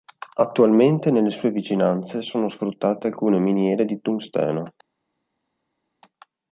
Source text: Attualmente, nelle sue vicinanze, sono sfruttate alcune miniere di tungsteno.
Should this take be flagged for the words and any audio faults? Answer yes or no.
no